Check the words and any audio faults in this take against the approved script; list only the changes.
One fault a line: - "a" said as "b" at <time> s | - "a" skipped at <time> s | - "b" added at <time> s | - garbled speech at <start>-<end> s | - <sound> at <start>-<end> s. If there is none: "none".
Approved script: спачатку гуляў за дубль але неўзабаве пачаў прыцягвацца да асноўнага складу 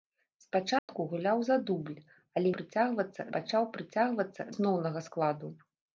- dropout at 0.8-0.9 s
- "неўзабаве" said as "прыцягвацца" at 2.6 s
- "да" skipped at 4.5 s